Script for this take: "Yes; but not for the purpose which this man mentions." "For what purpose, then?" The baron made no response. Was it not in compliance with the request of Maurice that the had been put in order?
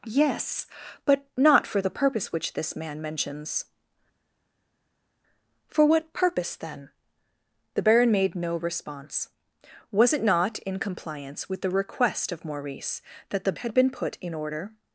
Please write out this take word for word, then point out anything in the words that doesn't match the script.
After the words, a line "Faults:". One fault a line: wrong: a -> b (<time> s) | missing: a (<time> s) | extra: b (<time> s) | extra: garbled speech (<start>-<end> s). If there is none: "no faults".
"Yes; but not for the purpose which this man mentions." "For what purpose, then?" The baron made no response. Was it not in compliance with the request of Maurice that the had been put in order?
Faults:
no faults